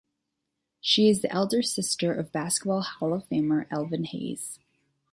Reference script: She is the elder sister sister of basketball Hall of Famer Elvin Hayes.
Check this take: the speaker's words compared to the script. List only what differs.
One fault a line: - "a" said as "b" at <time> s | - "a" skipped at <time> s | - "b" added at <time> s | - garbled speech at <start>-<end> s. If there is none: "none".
- "sister" skipped at 2.1 s